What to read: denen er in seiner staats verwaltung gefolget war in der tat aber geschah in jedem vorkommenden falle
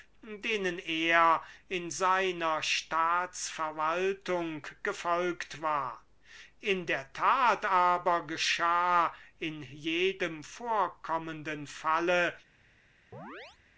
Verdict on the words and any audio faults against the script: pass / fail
fail